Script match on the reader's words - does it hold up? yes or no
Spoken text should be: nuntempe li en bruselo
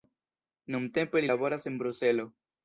no